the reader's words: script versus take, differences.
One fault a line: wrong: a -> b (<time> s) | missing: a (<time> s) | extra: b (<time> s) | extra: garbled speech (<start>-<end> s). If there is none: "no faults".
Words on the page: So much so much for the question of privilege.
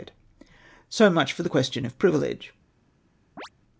missing: so much (1.3 s)